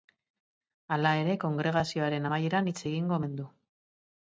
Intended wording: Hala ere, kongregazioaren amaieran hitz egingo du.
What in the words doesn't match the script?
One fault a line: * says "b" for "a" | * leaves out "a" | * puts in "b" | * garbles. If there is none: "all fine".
* puts in "omen"